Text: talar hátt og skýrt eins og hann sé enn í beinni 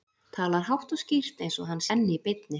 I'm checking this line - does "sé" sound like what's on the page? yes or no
no